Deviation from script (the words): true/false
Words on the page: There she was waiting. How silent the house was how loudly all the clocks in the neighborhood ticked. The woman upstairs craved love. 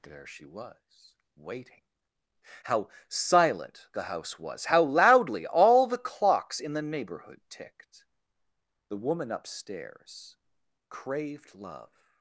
false